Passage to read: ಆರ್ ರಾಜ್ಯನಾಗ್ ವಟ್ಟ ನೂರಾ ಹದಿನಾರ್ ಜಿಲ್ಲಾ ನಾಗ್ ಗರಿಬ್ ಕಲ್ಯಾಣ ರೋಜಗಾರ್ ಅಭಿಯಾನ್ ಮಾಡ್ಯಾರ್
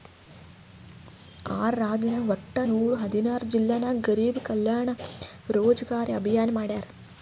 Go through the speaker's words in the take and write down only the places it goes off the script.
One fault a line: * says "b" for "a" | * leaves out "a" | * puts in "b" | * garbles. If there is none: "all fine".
all fine